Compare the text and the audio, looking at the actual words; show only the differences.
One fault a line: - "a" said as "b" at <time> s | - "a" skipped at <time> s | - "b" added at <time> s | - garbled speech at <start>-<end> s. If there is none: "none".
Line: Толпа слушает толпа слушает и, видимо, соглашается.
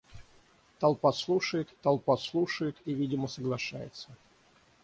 none